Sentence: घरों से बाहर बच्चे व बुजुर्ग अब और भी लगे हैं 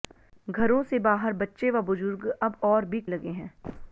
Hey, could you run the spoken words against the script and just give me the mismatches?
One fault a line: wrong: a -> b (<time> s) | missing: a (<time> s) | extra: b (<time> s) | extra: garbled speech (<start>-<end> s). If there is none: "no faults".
no faults